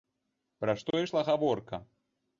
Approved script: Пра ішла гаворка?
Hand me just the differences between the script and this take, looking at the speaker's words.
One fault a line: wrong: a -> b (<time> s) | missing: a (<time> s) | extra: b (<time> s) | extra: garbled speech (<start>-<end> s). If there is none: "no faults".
extra: што (0.8 s)